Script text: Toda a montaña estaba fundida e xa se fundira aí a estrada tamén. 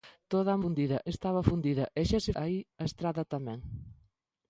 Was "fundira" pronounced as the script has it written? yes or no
no